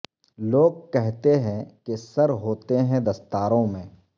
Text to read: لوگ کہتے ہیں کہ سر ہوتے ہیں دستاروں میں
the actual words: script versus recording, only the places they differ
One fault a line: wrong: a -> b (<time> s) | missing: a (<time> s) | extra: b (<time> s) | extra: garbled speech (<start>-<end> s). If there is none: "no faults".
no faults